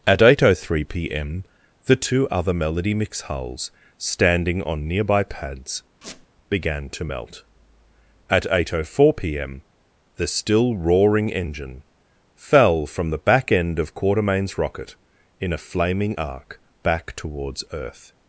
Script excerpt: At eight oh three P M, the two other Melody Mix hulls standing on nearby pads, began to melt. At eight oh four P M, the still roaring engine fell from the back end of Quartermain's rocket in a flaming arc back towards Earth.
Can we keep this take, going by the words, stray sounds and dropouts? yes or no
no